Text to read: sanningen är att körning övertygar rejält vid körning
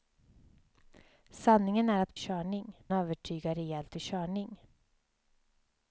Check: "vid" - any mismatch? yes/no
no